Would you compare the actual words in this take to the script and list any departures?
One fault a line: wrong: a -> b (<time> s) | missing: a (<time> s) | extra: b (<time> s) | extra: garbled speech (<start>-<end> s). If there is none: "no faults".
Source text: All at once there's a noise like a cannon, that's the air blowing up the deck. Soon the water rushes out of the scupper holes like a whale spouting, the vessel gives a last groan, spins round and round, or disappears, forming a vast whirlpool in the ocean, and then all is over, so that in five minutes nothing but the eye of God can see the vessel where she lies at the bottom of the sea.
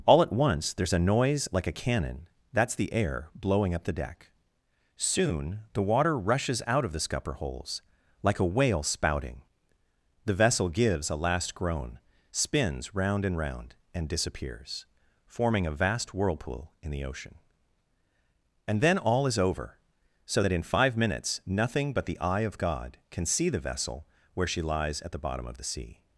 wrong: or -> and (13.9 s)